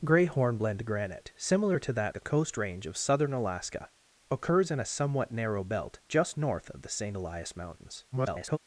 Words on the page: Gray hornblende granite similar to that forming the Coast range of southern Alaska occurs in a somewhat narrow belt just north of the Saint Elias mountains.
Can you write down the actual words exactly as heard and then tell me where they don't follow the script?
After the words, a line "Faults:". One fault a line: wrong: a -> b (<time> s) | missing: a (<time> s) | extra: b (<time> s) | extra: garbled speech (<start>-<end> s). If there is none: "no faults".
Gray hornblende granite similar to that the Coast range of southern Alaska occurs in a somewhat narrow belt just north of the Saint Elias mountains. [garbled]
Faults:
missing: forming (2.2 s)
extra: garbled speech (8.1-8.6 s)